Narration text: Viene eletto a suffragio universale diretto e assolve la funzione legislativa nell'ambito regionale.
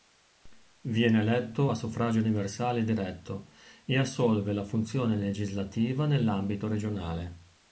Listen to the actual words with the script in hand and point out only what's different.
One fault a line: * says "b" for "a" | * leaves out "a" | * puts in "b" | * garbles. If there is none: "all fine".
all fine